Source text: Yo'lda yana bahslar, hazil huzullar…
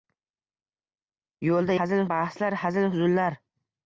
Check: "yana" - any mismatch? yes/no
yes